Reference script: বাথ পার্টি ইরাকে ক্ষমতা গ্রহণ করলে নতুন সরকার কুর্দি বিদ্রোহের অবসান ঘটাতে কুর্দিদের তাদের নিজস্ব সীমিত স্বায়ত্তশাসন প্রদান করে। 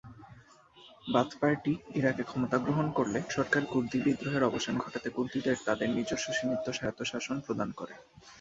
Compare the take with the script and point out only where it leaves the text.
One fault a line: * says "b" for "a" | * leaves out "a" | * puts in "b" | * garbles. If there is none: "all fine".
* leaves out "নতুন"